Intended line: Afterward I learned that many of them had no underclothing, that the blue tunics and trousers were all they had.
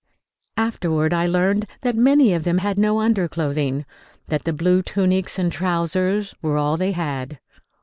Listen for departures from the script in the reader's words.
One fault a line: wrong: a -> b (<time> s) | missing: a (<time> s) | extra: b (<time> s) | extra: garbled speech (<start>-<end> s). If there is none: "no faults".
no faults